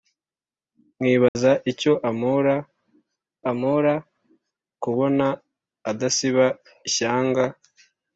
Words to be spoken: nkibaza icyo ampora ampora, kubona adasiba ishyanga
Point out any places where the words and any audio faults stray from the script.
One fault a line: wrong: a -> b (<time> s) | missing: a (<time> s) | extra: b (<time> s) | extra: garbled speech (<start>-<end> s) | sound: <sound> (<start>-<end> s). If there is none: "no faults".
sound: dropout (1.3-1.4 s)